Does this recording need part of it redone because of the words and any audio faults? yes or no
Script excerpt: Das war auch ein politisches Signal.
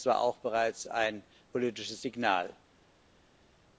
yes